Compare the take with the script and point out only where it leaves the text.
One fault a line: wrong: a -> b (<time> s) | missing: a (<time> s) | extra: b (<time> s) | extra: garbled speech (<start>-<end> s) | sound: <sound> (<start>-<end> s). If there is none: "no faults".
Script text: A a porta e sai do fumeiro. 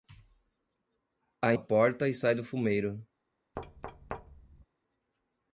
sound: thud (3.6-4.7 s)